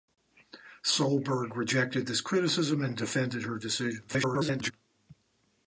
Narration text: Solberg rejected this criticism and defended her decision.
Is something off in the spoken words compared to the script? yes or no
yes